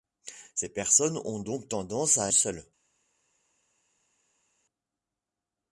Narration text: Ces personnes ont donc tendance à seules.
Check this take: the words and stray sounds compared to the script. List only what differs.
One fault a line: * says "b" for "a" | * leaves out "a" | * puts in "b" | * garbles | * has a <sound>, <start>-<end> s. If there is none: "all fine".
all fine